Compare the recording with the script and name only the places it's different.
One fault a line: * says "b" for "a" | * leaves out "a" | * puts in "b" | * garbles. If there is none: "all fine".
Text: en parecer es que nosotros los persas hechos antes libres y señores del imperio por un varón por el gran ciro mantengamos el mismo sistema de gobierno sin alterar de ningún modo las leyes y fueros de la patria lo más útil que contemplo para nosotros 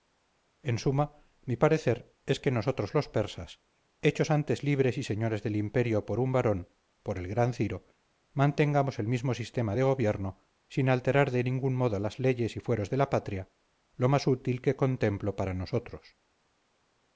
* puts in "suma mi"